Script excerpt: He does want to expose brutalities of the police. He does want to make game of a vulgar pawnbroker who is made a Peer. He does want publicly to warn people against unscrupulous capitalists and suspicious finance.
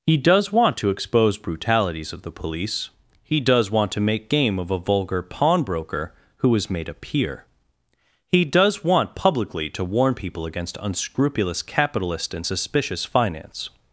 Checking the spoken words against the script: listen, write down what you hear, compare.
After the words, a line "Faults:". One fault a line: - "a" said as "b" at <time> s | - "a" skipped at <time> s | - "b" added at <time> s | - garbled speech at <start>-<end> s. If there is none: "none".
He does want to expose brutalities of the police. He does want to make game of a vulgar pawnbroker who is made a Peer. He does want publicly to warn people against unscrupulous capitalist and suspicious finance.
Faults:
- "capitalists" said as "capitalist" at 11.6 s